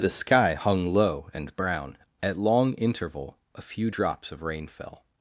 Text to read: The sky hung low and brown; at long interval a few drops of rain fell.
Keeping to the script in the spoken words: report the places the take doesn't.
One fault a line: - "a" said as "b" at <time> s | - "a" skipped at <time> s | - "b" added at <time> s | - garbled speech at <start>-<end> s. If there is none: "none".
none